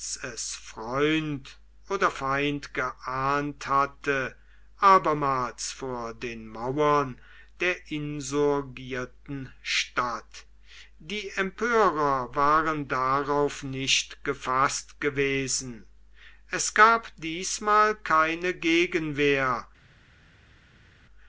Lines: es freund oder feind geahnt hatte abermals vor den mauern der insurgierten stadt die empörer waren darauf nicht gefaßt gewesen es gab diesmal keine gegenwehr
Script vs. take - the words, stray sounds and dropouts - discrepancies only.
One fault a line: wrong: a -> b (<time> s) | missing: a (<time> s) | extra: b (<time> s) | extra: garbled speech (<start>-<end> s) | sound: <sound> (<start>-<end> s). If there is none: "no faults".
no faults